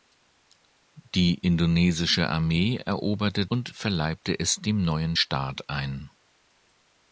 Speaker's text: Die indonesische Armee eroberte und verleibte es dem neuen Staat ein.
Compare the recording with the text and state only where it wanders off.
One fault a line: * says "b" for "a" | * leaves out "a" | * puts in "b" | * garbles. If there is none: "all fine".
all fine